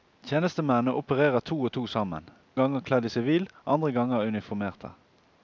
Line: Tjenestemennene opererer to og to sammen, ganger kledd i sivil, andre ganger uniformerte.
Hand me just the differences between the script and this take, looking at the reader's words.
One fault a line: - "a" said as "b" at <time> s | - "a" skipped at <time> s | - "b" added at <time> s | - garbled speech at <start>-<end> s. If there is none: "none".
none